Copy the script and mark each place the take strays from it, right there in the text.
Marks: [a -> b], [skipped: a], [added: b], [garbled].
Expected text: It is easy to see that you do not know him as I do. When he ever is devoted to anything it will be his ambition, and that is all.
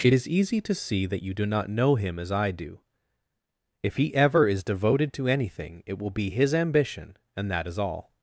It is easy to see that you do not know him as I do. [When -> If] he ever is devoted to anything it will be his ambition, and that is all.